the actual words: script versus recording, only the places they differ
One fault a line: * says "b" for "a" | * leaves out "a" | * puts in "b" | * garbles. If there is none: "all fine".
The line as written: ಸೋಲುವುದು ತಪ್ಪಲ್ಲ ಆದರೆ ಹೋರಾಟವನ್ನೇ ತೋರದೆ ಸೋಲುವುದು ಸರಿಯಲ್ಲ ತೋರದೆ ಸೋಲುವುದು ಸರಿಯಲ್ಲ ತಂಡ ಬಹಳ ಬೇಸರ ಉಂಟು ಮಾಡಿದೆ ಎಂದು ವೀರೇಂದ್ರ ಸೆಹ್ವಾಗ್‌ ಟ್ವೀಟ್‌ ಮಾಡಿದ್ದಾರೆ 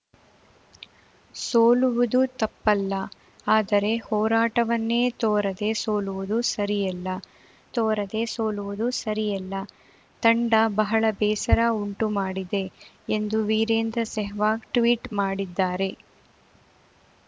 all fine